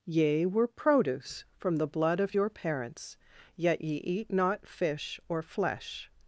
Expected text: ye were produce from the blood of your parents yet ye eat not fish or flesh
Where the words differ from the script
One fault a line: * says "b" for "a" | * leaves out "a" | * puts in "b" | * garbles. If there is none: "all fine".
all fine